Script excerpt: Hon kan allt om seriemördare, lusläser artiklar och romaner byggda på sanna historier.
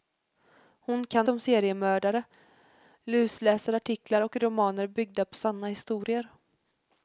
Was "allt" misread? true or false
true